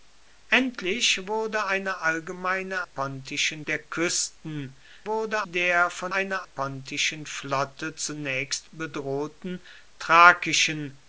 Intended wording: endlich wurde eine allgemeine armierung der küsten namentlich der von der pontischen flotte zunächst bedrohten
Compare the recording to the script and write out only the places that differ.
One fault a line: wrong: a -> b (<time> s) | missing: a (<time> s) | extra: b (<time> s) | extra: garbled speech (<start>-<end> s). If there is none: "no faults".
wrong: armierung -> pontischen (2.8 s)
wrong: namentlich -> wurde (5.1 s)
wrong: der -> eine (6.1 s)